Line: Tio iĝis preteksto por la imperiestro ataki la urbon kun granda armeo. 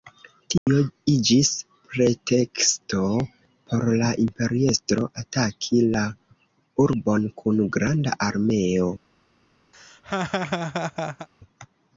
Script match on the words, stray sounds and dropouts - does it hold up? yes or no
no